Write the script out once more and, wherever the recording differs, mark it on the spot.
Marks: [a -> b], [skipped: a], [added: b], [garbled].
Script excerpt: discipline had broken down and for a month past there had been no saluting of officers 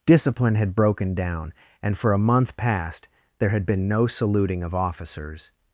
discipline had broken down and for a month past there had been no saluting of officers